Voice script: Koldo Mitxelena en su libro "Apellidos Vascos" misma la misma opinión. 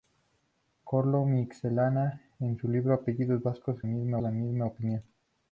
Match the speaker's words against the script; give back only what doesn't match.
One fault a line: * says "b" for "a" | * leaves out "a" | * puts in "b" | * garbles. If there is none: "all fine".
all fine